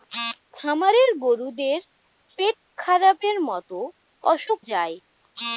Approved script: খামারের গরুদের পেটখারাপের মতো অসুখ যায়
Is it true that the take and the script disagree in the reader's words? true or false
false